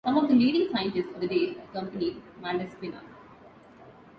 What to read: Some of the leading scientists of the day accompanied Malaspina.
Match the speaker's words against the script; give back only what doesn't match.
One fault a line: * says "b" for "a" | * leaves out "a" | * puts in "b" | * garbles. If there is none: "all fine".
all fine